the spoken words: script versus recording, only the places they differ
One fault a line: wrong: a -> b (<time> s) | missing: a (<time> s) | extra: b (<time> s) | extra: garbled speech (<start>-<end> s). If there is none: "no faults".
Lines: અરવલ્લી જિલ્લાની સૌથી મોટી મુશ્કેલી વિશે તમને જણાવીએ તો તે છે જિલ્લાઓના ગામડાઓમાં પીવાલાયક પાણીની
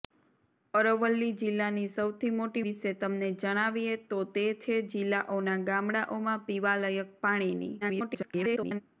missing: મુશ્કેલી (2.6 s)
extra: garbled speech (7.8-8.8 s)